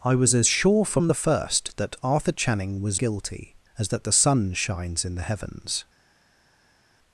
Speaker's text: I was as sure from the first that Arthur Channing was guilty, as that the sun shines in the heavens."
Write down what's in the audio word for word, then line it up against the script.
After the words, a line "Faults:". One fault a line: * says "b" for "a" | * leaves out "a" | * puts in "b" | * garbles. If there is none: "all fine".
I was as sure from the first that Arthur Channing was guilty, as that the sun shines in the heavens."
Faults:
all fine